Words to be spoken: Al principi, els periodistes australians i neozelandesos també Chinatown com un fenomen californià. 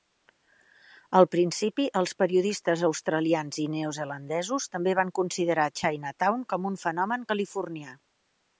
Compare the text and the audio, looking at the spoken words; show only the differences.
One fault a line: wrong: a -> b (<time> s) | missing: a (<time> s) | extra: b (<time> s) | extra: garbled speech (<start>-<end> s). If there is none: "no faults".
extra: van considerar (5.0 s)